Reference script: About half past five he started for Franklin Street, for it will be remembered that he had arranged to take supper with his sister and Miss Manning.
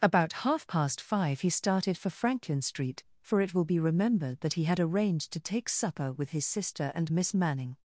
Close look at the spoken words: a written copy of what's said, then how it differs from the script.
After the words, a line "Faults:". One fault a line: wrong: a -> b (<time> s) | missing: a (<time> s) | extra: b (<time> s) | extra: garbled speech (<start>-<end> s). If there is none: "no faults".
About half past five he started for Franklin Street, for it will be remembered that he had arranged to take supper with his sister and Miss Manning.
Faults:
no faults